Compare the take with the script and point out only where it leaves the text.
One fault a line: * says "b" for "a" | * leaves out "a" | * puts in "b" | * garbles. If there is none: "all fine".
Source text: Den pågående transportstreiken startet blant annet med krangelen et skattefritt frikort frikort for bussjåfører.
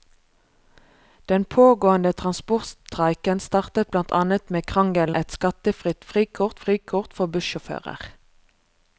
all fine